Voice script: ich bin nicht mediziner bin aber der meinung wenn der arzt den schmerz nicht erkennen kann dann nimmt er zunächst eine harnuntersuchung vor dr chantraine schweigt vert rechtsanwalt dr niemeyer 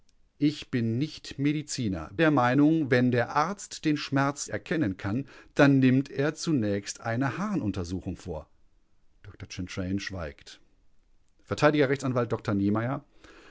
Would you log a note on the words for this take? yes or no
yes